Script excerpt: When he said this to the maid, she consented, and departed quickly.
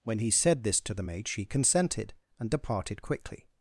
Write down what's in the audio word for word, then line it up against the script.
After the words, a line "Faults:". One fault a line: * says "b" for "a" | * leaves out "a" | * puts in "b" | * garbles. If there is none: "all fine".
When he said this to the maid, she consented, and departed quickly.
Faults:
all fine